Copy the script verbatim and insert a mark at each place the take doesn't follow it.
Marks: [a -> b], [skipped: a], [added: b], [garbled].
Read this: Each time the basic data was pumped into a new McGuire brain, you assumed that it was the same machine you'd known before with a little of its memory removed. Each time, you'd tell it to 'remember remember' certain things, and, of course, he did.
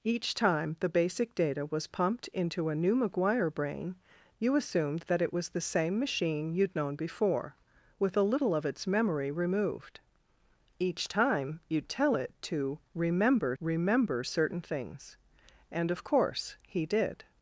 Each time the basic data was pumped into a new McGuire brain, you assumed that it was the same machine you'd known before with a little of its memory removed. Each time, you'd tell it to 'remember remember' certain things, and, of course, he did.